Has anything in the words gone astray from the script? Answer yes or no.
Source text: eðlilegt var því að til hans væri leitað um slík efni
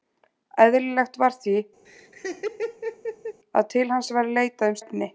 yes